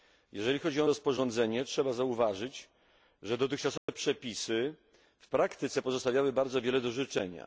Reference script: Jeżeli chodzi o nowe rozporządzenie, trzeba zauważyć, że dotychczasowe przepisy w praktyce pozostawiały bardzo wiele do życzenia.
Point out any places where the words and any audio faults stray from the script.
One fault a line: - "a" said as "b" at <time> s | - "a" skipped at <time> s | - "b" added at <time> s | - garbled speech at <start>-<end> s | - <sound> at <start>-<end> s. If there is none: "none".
- "nowe" skipped at 0.9 s
- dropout at 3.8-3.9 s